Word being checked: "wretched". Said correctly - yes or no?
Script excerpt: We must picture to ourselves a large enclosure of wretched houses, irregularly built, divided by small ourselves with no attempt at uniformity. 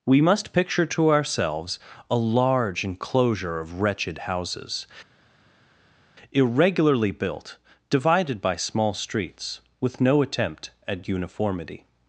yes